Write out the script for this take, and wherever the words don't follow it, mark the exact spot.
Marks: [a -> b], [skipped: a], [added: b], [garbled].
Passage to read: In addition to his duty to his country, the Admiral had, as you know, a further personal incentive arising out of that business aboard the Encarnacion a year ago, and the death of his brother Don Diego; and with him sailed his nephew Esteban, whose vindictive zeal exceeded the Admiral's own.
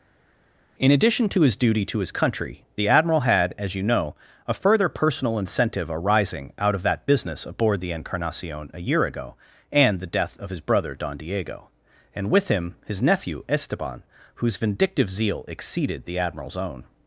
In addition to his duty to his country, the Admiral had, as you know, a further personal incentive arising out of that business aboard the Encarnacion a year ago, and the death of his brother Don Diego; and with him [skipped: sailed] his nephew Esteban, whose vindictive zeal exceeded the Admiral's own.